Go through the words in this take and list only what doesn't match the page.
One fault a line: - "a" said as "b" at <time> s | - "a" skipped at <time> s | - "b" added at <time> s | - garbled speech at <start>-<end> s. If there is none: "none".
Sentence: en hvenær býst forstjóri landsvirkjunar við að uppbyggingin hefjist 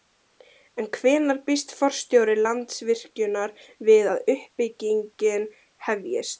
none